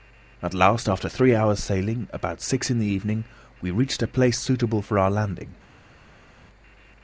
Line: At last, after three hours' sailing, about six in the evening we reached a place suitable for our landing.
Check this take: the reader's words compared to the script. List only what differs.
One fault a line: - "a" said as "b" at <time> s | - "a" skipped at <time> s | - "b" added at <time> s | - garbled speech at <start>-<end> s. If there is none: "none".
none